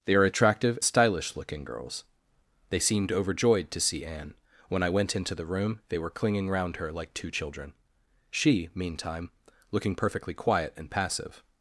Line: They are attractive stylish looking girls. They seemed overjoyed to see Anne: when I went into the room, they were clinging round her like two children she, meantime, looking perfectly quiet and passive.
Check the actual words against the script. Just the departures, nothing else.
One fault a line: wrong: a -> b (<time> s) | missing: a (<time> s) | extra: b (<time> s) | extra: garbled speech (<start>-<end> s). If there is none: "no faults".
no faults